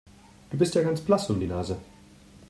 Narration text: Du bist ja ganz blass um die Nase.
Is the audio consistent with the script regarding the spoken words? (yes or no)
yes